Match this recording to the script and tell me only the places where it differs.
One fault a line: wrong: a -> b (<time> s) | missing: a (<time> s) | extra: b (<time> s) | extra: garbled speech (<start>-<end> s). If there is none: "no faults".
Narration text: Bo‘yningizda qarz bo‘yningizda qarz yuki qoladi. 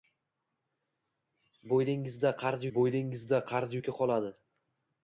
no faults